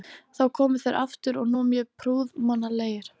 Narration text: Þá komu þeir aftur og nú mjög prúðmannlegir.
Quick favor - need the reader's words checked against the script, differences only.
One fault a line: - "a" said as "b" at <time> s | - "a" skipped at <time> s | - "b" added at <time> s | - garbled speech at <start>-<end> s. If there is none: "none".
none